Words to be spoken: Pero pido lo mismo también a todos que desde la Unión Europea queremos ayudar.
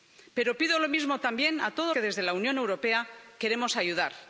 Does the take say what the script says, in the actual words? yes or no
yes